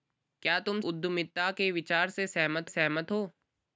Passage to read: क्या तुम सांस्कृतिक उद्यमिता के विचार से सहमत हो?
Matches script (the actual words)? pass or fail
fail